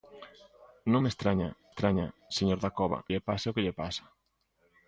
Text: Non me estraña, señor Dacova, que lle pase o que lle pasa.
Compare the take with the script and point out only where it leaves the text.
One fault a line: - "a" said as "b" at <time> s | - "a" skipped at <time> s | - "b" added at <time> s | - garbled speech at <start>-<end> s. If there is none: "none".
- "estraña" added at 1.7 s
- "que" skipped at 3.0 s